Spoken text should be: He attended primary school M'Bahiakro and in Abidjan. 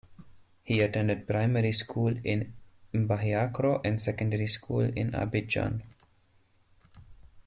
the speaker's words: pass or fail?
fail